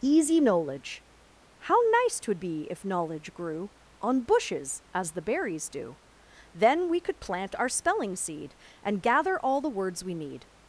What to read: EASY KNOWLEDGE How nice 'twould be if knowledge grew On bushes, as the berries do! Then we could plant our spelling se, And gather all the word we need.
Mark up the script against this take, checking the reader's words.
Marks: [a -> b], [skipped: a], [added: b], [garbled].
EASY KNOWLEDGE How nice 'twould be if knowledge grew On bushes, as the berries do! Then we could plant our spelling [se, -> seed] And gather all the [word -> words] we need.